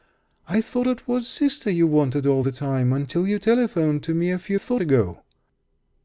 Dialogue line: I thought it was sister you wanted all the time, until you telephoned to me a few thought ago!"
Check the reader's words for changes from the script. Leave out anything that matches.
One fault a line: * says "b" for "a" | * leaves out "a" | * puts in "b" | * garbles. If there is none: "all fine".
all fine